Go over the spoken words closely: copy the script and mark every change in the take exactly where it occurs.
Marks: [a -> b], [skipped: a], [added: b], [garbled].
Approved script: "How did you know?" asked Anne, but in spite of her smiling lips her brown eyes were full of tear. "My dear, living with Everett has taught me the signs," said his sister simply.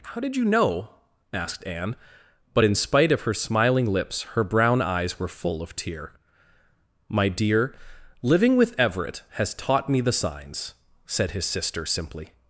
"How did you know?" asked Anne, but in spite of her smiling lips her brown eyes were full of tear. "My dear, living with Everett has taught me the signs," said his sister simply.